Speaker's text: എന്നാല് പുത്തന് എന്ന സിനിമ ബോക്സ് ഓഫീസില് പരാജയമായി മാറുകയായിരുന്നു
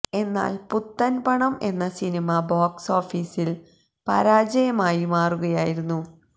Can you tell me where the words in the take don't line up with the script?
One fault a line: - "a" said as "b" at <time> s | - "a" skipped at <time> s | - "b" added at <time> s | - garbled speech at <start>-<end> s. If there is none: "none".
- "പണം" added at 1.2 s